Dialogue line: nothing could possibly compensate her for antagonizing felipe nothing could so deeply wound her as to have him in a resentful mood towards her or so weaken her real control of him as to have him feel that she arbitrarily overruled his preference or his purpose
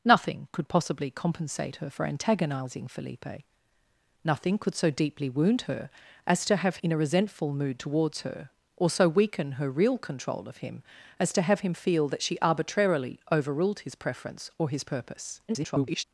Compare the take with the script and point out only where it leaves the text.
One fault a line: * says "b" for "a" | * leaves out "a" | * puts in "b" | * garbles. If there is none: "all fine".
* leaves out "him"
* garbles